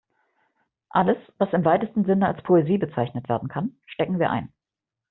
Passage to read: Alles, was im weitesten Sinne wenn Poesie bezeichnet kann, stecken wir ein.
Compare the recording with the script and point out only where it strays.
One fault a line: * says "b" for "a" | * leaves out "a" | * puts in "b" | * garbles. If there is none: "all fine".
* says "als" for "wenn"
* puts in "werden"